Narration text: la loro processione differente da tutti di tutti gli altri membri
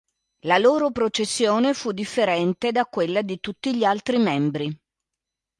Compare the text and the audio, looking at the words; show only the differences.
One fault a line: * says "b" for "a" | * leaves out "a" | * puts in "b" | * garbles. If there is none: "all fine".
* puts in "fu"
* says "quella" for "tutti"